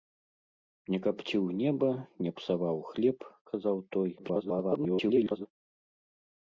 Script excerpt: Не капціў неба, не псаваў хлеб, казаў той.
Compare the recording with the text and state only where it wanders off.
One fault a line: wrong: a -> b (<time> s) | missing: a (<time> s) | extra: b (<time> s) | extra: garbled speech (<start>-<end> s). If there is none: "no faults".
extra: garbled speech (4.2-5.5 s)